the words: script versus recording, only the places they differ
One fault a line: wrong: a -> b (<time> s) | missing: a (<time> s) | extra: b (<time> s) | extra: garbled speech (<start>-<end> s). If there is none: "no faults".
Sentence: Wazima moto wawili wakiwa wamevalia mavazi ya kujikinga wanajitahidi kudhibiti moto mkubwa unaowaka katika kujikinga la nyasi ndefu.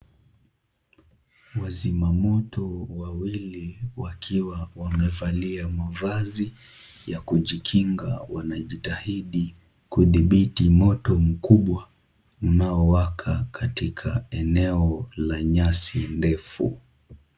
wrong: kujikinga -> eneo (14.3 s)